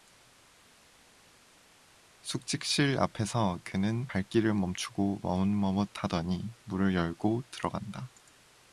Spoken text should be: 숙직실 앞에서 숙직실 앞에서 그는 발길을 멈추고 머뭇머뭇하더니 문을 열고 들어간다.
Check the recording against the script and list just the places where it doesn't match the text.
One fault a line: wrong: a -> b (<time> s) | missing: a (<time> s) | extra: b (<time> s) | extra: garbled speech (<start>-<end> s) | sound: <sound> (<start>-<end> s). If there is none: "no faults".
missing: 숙직실 앞에서 (3.6 s)